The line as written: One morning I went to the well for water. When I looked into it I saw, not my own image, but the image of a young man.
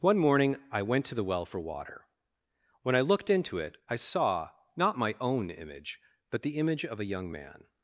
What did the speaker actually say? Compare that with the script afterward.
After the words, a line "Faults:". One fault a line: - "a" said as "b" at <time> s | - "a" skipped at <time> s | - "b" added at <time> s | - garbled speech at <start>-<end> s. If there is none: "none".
One morning I went to the well for water. When I looked into it I saw, not my own image, but the image of a young man.
Faults:
none